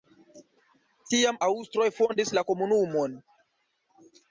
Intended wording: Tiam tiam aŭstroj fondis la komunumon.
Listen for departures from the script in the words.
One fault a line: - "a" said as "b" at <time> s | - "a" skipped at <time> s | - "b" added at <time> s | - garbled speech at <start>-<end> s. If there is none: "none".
- "tiam" skipped at 1.4 s